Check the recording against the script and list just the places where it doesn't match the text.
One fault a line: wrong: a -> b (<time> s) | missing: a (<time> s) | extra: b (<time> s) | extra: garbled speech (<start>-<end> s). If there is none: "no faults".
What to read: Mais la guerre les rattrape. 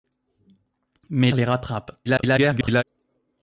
missing: la guerre (1.3 s)
extra: garbled speech (2.1-2.8 s)